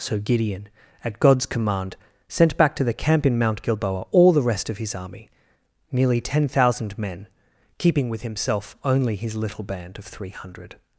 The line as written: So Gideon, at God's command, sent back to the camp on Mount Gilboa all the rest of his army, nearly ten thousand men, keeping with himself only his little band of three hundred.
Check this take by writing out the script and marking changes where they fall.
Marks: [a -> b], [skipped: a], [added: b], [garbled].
So Gideon, at God's command, sent back to the camp [on -> in] Mount Gilboa all the rest of his army, nearly ten thousand men, keeping with himself only his little band of three hundred.